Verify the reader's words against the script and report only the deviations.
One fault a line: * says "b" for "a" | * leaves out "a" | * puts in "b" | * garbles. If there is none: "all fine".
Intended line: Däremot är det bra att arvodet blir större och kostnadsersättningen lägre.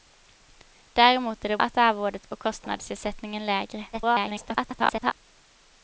* leaves out "bra"
* leaves out "blir större"
* garbles